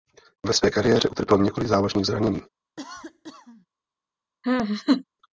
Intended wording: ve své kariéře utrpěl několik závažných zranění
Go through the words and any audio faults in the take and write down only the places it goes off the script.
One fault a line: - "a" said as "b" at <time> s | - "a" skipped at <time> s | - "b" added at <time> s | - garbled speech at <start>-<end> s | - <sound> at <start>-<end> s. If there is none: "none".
- cough at 2.8-3.7 s
- laugh at 4.4-5.0 s